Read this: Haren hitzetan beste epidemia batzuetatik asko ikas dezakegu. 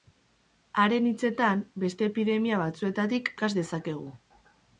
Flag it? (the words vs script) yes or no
yes